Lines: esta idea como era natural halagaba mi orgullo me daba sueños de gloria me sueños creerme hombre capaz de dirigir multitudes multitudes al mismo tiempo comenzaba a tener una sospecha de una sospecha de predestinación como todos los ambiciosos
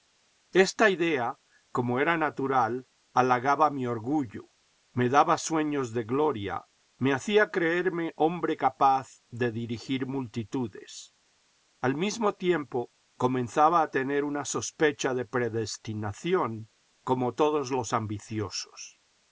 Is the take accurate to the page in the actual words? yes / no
no